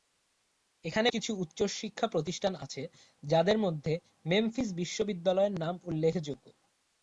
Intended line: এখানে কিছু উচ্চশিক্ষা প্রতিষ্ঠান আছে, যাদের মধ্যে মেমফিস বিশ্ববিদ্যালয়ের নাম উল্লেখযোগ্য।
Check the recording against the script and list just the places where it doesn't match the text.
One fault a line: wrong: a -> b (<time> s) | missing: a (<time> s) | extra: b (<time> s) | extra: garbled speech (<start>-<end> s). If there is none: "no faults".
no faults